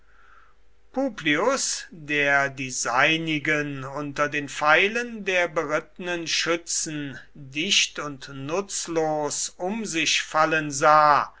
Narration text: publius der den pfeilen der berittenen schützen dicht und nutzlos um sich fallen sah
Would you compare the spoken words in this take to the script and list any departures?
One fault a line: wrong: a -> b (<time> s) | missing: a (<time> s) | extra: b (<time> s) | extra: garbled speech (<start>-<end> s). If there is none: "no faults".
extra: die seinigen unter (2.5 s)